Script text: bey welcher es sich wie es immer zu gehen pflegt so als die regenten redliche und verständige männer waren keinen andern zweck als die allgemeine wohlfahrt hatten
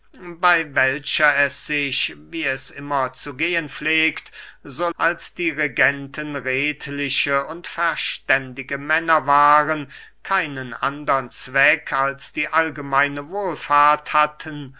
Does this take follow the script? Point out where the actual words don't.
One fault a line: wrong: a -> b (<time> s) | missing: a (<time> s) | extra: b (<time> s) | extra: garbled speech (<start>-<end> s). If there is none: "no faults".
no faults